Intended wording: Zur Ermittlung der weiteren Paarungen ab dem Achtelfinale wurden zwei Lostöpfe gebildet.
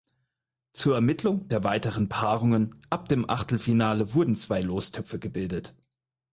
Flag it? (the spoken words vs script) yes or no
no